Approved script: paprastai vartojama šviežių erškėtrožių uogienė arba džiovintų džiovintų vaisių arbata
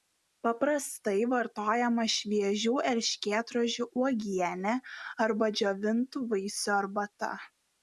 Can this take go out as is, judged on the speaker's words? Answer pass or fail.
fail